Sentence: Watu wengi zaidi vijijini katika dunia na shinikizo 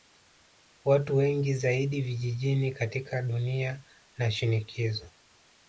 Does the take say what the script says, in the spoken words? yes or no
yes